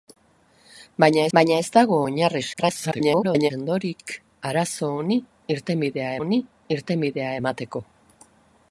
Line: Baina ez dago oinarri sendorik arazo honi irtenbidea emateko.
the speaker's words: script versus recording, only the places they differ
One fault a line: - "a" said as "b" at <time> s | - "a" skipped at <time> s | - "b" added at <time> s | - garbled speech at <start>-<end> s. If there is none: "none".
- "baina" added at 1.4 s
- garbled speech at 2.5-3.5 s
- "honi irtenbidea" added at 6.2 s